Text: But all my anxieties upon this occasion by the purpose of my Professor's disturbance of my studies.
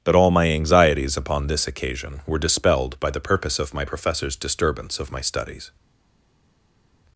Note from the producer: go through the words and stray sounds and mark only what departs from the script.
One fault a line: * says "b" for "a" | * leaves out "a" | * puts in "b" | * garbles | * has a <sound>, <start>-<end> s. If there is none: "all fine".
* puts in "were dispelled"